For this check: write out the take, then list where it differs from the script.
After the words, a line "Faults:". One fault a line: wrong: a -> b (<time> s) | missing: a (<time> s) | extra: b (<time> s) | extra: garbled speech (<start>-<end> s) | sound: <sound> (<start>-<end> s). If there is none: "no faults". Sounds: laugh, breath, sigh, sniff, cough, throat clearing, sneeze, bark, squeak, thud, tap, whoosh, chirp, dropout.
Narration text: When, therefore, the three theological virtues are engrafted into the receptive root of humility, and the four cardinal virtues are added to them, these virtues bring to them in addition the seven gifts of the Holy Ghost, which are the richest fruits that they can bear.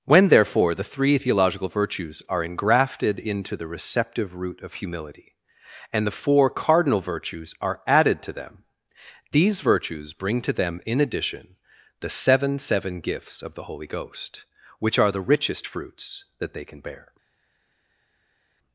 When, therefore, the three theological virtues are engrafted into the receptive root of humility, and the four cardinal virtues are added to them, these virtues bring to them in addition the seven seven gifts of the Holy Ghost, which are the richest fruits that they can bear.
Faults:
extra: seven (12.6 s)